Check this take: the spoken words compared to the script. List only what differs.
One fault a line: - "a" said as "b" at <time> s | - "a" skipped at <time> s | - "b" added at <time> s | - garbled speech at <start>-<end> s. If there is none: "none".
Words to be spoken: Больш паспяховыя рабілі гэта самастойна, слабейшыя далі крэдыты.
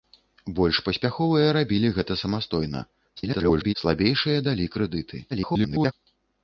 - garbled speech at 3.2-3.7 s
- garbled speech at 5.3-5.9 s